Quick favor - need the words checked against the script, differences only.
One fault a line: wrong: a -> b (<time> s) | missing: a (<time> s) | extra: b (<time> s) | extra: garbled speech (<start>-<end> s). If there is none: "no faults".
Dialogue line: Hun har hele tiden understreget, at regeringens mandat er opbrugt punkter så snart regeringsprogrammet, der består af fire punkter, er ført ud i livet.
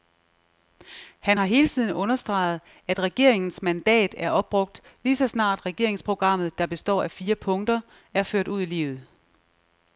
wrong: Hun -> Han (1.2 s)
wrong: punkter -> lige (5.0 s)